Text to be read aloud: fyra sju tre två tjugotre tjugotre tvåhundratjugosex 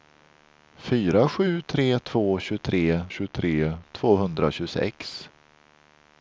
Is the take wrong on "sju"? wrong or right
right